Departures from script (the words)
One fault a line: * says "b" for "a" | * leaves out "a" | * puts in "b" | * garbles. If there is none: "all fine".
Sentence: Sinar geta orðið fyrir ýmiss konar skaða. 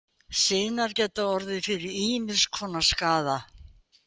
all fine